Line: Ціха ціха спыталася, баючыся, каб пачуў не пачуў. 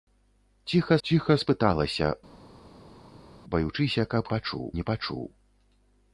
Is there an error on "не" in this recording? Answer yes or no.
no